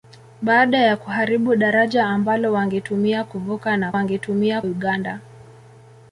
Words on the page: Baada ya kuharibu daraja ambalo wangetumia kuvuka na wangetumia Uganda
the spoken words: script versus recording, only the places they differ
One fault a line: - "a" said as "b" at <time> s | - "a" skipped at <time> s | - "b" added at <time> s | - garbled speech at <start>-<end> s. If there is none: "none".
none